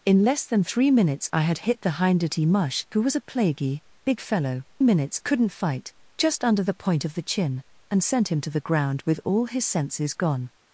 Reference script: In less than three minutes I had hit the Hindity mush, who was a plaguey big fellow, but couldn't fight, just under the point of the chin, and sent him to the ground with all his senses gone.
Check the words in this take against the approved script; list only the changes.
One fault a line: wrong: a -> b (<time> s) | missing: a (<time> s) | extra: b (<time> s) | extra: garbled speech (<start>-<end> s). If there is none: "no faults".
wrong: but -> minutes (4.8 s)